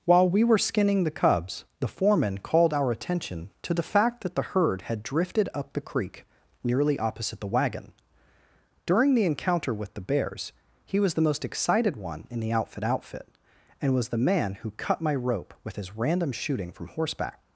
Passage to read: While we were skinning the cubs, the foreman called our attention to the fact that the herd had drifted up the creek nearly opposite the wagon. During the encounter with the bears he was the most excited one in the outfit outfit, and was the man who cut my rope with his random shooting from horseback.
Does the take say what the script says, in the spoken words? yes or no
yes